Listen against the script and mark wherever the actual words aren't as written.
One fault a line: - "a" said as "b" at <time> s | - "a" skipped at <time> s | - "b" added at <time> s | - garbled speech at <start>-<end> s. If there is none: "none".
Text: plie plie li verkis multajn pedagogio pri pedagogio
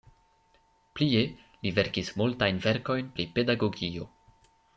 - "plie" skipped at 1.2 s
- "pedagogio" said as "verkojn" at 2.7 s